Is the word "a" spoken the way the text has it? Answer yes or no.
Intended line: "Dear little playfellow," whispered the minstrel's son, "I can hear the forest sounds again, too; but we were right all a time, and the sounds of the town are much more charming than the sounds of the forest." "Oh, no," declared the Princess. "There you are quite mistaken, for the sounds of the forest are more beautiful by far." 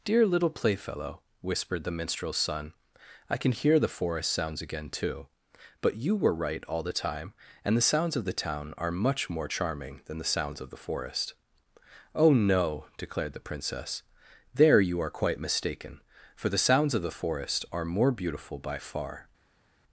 no